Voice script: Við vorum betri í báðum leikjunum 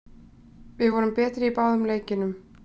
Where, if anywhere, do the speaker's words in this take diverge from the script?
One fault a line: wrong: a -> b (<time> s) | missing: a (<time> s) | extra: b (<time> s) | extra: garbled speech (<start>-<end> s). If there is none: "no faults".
no faults